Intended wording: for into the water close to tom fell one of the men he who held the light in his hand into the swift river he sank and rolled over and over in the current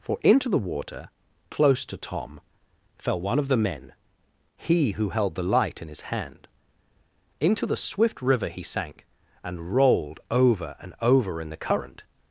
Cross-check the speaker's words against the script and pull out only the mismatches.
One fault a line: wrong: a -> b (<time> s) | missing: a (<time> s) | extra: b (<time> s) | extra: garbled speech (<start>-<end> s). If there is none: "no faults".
no faults